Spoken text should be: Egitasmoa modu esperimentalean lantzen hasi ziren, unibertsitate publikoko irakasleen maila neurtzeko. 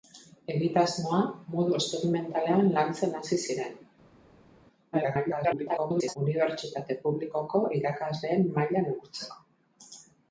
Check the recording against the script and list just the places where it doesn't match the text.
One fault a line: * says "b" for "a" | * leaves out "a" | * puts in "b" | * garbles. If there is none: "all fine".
* garbles